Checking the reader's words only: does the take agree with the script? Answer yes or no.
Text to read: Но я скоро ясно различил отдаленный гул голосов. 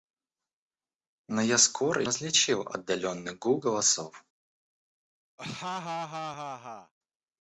no